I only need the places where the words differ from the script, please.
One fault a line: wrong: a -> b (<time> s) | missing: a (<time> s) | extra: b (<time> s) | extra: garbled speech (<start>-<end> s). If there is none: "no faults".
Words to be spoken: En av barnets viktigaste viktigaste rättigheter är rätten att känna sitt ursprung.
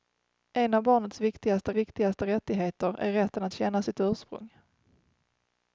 no faults